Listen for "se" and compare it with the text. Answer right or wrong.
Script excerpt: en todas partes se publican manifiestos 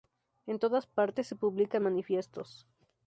right